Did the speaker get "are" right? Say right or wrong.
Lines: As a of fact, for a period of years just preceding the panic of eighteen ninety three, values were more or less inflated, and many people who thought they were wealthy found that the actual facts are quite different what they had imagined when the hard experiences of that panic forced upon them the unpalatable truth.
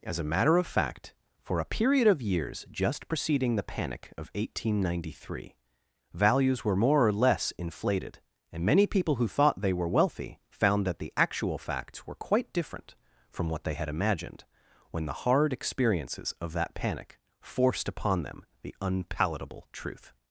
wrong